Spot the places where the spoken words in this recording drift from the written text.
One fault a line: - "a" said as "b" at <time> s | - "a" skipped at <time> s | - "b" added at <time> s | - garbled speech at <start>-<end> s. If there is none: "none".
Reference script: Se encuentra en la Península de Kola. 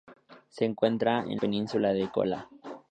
- "la" skipped at 1.4 s